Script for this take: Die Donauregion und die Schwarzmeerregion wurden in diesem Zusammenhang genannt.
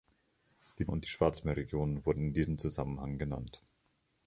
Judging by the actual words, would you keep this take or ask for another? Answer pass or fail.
fail